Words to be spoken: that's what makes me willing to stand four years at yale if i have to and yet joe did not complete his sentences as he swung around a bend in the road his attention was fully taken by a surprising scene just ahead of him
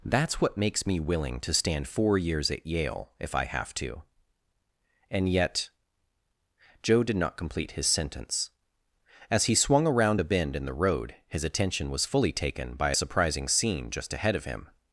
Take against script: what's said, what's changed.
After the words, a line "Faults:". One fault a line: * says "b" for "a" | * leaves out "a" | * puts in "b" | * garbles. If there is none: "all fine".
that's what makes me willing to stand four years at yale if i have to and yet joe did not complete his sentence as he swung around a bend in the road his attention was fully taken by a surprising scene just ahead of him
Faults:
* says "sentence" for "sentences"